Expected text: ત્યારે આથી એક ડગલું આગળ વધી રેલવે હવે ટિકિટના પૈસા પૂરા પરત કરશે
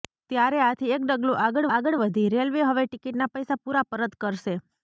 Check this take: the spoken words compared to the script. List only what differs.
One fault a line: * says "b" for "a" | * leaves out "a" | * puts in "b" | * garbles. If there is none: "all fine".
* puts in "આગળ"